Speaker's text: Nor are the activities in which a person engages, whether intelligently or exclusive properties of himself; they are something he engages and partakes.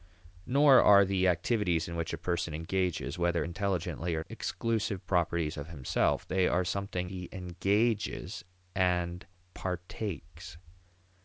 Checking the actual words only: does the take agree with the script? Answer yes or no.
yes